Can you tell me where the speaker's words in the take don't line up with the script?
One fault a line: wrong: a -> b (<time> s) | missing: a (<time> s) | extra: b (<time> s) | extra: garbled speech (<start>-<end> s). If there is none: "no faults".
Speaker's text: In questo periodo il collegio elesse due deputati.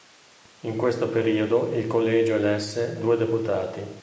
no faults